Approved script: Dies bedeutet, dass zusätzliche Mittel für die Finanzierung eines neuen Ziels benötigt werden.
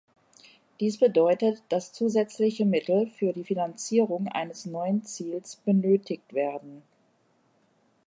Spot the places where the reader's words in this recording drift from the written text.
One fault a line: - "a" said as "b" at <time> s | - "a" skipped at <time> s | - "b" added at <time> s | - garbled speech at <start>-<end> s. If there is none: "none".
none